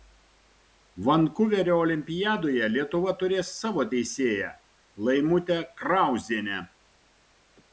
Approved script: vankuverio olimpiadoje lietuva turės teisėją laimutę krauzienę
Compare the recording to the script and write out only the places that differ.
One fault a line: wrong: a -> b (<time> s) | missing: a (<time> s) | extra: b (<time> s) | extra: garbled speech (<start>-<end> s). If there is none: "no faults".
extra: savo (3.6 s)